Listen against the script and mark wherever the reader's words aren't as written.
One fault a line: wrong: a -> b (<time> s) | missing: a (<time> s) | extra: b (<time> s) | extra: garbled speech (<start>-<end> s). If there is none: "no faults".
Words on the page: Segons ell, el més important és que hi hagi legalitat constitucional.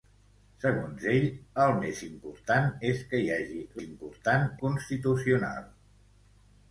wrong: legalitat -> important (3.8 s)